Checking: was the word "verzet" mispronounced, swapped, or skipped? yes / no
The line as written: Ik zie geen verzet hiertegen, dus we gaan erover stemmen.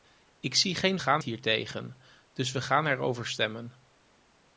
yes